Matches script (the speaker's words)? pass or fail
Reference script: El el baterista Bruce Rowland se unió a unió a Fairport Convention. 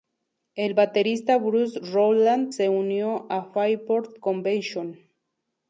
fail